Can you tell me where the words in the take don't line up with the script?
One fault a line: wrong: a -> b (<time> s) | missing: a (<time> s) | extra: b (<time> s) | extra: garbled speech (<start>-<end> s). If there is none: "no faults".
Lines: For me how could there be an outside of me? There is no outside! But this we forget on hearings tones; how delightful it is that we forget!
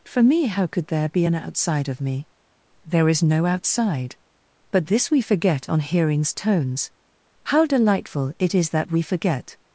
no faults